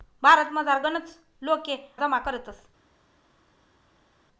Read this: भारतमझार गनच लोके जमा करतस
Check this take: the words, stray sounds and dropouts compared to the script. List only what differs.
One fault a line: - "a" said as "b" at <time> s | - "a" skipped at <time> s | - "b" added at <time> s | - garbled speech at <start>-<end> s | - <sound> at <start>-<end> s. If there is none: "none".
none